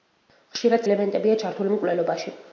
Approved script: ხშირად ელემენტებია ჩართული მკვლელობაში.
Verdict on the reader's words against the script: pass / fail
pass